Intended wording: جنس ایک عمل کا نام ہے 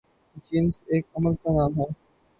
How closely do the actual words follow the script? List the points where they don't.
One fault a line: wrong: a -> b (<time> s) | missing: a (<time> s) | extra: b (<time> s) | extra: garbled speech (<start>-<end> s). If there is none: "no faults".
no faults